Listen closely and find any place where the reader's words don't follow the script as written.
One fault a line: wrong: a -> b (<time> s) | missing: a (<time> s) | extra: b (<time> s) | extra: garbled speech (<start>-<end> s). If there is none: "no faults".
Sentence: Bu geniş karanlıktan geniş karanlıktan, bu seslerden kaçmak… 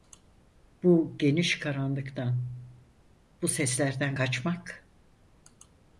missing: geniş karanlıktan (2.5 s)